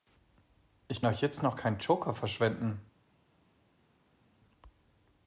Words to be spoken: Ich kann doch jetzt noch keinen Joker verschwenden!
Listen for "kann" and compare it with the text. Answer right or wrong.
wrong